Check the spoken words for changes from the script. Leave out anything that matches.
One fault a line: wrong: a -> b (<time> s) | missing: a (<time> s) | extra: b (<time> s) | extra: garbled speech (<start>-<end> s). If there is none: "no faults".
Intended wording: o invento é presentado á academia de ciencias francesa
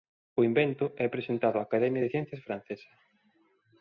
no faults